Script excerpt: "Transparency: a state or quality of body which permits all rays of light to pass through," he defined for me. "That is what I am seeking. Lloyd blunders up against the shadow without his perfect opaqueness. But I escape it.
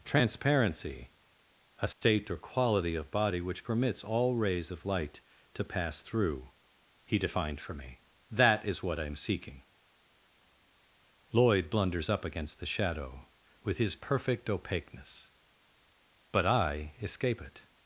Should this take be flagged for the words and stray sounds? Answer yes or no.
yes